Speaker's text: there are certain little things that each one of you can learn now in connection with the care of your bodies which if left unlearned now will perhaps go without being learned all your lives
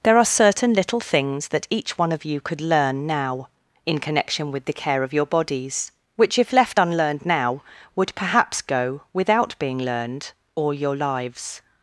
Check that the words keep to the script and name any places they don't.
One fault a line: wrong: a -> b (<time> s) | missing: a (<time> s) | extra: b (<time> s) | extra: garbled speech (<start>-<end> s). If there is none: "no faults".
wrong: can -> could (2.4 s)
wrong: will -> would (8.0 s)